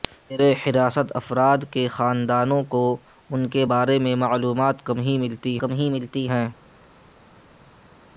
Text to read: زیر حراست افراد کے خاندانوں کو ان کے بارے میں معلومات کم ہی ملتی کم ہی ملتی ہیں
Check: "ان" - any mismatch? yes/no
no